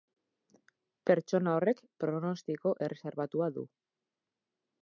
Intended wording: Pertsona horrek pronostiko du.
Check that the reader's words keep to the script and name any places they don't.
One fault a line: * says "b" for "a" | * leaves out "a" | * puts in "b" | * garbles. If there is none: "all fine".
* puts in "erreserbatua"